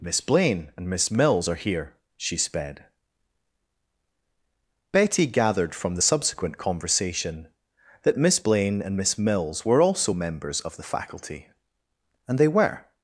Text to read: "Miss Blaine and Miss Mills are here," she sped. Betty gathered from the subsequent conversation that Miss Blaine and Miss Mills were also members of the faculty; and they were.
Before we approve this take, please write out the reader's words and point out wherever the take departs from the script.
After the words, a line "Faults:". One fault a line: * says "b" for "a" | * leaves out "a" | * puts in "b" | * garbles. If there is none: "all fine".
"Miss Blaine and Miss Mills are here," she sped. Betty gathered from the subsequent conversation that Miss Blaine and Miss Mills were also members of the faculty; and they were.
Faults:
all fine